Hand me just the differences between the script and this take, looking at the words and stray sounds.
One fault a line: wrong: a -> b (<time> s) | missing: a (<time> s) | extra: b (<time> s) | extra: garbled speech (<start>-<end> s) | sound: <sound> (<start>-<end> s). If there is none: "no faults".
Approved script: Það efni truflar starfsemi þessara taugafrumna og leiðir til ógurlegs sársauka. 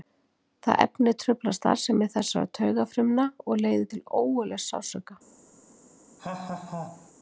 sound: laugh (6.2-7.1 s)